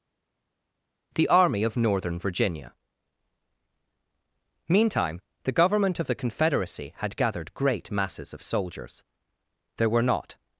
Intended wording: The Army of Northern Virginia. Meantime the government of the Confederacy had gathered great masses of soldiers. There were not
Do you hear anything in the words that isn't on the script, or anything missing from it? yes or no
no